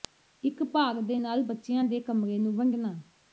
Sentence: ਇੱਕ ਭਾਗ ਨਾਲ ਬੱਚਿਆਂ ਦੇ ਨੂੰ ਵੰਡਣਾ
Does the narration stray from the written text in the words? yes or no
yes